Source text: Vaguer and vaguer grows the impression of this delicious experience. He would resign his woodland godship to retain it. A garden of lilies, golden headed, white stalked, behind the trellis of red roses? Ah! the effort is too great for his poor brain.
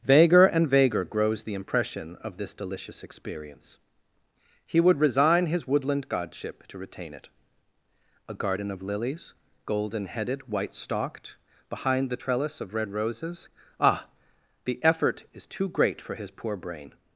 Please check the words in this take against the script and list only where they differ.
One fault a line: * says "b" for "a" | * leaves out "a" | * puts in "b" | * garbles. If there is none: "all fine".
all fine